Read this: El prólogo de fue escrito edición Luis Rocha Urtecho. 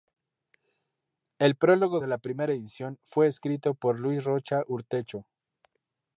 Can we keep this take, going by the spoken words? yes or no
no